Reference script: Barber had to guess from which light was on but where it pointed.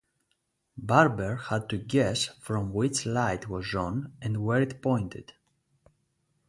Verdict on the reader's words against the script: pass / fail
fail